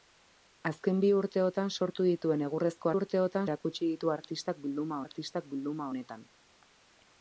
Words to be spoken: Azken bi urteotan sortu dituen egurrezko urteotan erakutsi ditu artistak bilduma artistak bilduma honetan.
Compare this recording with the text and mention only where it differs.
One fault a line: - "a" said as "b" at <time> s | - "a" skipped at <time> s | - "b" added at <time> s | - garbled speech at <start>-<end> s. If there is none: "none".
none